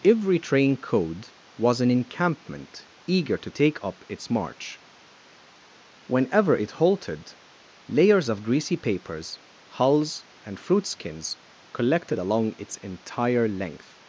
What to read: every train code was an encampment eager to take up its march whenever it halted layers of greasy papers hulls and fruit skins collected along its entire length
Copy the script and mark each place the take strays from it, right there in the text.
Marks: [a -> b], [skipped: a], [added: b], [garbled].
every train code was an encampment eager to take up its march whenever it halted layers of greasy papers hulls and fruit skins collected along its entire length